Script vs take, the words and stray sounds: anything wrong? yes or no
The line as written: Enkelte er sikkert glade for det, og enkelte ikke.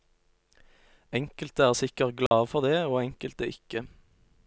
yes